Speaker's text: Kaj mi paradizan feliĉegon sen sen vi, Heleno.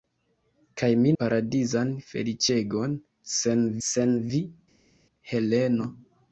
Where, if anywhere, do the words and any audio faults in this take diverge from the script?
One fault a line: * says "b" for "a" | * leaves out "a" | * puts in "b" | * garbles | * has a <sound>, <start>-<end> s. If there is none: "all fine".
all fine